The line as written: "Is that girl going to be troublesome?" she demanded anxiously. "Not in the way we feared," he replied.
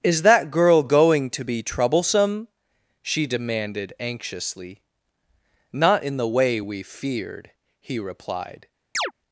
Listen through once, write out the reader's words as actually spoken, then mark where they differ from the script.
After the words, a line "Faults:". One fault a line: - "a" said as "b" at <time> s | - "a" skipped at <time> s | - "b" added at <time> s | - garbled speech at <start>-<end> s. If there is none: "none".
"Is that girl going to be troublesome?" she demanded anxiously. "Not in the way we feared," he replied.
Faults:
none